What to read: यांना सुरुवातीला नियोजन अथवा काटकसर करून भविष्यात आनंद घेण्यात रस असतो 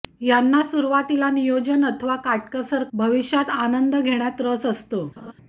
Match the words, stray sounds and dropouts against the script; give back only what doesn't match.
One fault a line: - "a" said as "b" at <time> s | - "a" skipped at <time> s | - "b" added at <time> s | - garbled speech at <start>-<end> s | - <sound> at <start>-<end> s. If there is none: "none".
- "करून" skipped at 2.8 s
- laugh at 5.2-5.3 s